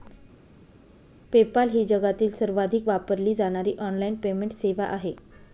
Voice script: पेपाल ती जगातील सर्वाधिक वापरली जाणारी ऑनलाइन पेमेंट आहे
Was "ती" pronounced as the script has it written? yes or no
no